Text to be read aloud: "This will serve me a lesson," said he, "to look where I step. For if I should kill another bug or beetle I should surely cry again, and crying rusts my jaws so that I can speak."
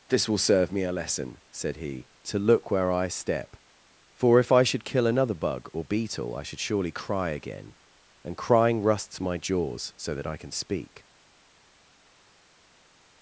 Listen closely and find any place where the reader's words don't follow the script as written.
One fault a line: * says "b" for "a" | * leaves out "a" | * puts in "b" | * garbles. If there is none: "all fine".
all fine